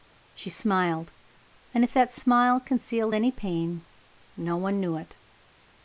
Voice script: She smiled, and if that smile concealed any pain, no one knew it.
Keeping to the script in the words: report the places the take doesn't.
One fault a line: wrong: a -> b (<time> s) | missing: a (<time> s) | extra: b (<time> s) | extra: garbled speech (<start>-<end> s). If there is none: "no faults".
no faults